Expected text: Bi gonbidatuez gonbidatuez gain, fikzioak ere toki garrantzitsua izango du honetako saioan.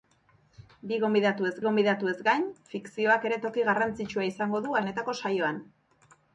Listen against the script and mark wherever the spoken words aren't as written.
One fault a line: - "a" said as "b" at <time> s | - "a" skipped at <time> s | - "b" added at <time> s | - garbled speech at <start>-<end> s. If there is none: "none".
none